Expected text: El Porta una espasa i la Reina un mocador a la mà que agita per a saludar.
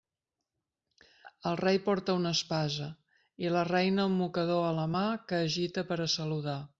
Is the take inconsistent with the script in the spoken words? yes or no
yes